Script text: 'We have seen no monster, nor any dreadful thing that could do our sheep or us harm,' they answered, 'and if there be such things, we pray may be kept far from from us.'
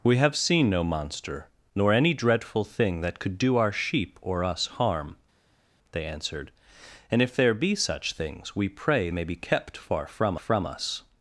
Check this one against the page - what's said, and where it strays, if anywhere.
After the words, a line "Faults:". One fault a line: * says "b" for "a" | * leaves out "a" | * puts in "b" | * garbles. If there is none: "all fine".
'We have seen no monster, nor any dreadful thing that could do our sheep or us harm,' they answered, 'and if there be such things, we pray may be kept far from from us.'
Faults:
all fine